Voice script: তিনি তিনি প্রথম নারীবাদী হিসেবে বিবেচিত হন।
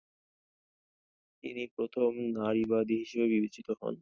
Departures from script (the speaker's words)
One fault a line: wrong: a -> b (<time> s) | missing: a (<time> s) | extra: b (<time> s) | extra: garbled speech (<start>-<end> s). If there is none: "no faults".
missing: তিনি (1.6 s)